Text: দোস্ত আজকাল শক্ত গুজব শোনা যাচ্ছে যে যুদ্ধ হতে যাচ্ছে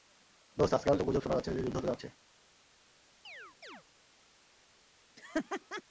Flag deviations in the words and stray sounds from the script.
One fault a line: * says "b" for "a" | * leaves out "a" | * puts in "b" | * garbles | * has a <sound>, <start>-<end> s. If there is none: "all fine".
* leaves out "শক্ত"
* has a chirp, 3.2-3.8 s
* has a laugh, 5.2-5.8 s